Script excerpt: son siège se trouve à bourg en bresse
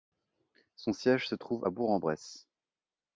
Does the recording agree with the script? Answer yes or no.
yes